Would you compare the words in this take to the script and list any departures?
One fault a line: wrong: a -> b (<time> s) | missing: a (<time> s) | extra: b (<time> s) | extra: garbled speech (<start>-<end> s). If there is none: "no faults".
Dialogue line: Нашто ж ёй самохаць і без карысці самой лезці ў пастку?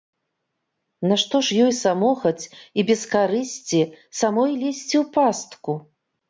no faults